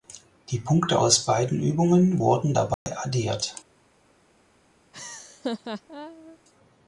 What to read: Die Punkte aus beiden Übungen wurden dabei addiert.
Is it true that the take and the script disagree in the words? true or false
false